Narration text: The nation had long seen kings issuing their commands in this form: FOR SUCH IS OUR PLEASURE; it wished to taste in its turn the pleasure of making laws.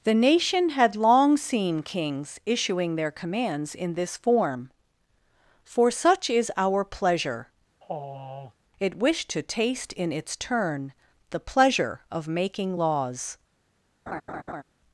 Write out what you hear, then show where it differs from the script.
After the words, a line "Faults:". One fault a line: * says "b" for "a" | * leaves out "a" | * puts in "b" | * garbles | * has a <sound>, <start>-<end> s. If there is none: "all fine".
The nation had long seen kings issuing their commands in this form: FOR SUCH IS OUR PLEASURE; it wished to taste in its turn the pleasure of making laws.
Faults:
* has a sigh, 7.8-8.5 s
* has a laugh, 14.1-14.6 s